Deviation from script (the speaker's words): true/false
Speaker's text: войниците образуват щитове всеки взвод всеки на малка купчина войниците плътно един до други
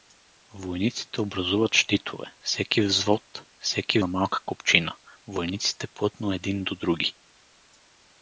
false